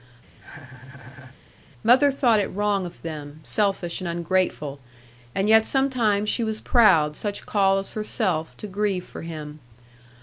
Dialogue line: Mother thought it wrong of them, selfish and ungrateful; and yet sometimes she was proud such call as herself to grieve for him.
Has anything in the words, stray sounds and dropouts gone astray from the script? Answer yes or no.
yes